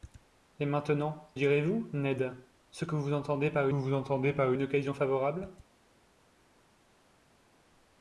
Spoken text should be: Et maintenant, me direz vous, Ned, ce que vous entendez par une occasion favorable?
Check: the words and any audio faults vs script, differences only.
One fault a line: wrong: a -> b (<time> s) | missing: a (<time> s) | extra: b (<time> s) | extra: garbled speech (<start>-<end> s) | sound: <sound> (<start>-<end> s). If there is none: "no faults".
missing: me (1.3 s)
extra: vous entendez par (3.7 s)